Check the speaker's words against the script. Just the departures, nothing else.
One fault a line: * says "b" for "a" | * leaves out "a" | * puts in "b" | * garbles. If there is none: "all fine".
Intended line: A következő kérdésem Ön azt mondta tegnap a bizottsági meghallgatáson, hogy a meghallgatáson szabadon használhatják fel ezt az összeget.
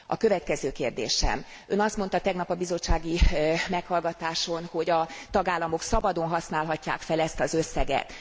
* says "tagállamok" for "meghallgatáson"